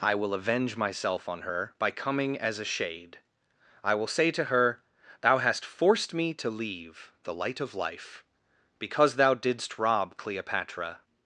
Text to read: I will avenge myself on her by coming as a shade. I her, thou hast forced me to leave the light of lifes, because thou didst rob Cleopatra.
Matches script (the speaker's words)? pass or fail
fail